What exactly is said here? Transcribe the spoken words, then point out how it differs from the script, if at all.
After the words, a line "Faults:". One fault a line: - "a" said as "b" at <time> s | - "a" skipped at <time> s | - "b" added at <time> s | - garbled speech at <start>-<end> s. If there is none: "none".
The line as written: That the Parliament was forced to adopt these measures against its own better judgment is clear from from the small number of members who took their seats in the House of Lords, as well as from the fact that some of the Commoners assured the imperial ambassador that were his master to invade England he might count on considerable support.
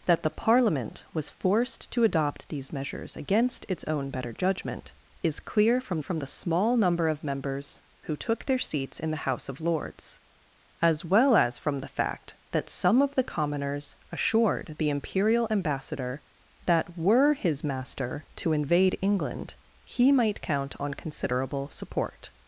That the Parliament was forced to adopt these measures against its own better judgment is clear from from the small number of members who took their seats in the House of Lords, as well as from the fact that some of the Commoners assured the imperial ambassador that were his master to invade England he might count on considerable support.
Faults:
none